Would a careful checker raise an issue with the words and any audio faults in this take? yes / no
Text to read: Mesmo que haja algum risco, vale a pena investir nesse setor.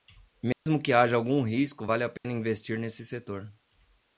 yes